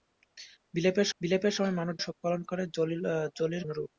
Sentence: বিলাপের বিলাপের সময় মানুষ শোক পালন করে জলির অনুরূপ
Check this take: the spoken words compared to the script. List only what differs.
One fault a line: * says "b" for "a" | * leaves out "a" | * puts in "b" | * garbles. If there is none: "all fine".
all fine